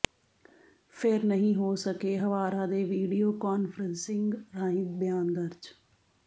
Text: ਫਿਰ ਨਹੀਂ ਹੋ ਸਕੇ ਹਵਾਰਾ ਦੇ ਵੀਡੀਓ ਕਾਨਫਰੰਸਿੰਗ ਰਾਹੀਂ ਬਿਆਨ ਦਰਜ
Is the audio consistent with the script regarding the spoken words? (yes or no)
yes